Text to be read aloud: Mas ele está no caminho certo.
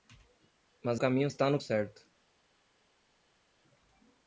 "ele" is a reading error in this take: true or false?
true